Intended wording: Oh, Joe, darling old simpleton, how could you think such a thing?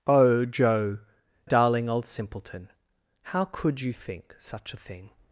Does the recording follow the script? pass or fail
pass